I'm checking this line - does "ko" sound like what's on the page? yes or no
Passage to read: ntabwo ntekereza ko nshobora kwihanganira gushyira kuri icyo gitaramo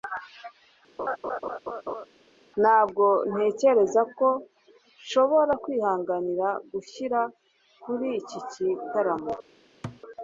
yes